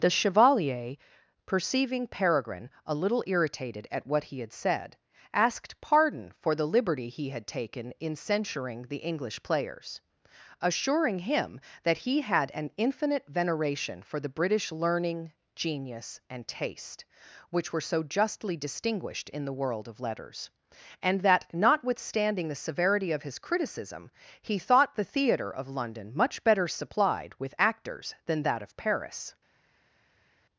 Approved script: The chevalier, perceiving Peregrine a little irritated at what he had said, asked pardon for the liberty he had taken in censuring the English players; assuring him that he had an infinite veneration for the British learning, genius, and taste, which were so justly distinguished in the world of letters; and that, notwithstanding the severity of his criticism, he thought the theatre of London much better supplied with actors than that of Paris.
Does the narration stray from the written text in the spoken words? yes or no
no